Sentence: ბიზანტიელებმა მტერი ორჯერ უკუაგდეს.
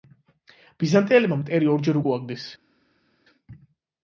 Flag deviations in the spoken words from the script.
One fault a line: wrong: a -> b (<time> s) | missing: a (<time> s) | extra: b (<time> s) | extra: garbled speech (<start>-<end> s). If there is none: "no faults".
no faults